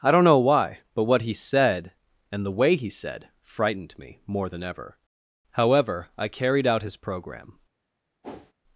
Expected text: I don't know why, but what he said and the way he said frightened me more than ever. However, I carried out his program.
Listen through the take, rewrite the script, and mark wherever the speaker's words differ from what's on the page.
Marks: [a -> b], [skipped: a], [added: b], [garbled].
I don't know why, but what he said and the way he said frightened me more than ever. However, I carried out his program.